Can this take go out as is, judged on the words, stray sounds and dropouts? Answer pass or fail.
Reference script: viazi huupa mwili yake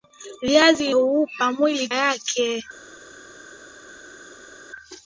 pass